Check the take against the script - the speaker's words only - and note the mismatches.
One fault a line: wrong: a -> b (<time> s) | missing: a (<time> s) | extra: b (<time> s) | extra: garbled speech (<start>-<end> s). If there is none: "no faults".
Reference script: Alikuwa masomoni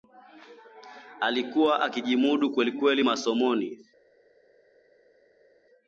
extra: akijimudu kwelikweli (1.8 s)